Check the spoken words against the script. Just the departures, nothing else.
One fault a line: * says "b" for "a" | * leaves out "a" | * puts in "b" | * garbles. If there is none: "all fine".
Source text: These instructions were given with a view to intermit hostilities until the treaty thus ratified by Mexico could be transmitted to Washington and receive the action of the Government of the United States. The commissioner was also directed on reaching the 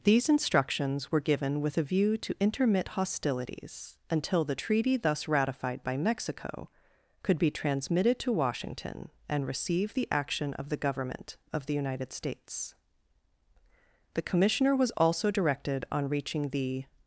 all fine